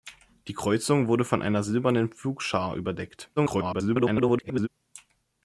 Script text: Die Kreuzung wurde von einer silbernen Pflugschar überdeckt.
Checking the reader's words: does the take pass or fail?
fail